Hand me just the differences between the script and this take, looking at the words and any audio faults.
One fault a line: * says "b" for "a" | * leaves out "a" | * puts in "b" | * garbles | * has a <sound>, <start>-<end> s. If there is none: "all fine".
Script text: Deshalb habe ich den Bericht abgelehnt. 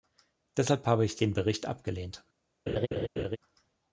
* has a laugh, 2.7-3.4 s